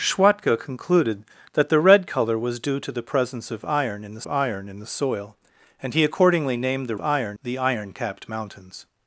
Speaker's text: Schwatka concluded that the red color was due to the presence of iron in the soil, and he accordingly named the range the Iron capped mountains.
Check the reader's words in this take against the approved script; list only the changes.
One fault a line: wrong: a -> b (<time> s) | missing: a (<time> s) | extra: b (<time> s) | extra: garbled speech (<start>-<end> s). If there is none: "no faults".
extra: iron in the (4.3 s)
wrong: range -> iron (7.0 s)